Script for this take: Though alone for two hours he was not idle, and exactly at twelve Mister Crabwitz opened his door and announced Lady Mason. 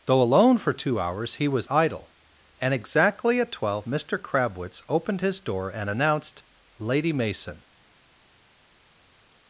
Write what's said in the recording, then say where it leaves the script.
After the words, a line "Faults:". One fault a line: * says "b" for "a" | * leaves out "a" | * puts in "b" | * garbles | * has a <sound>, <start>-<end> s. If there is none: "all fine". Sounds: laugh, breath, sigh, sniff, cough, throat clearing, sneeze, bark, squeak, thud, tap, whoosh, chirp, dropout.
Though alone for two hours he was idle, and exactly at twelve Mister Crabwitz opened his door and announced Lady Mason.
Faults:
* leaves out "not"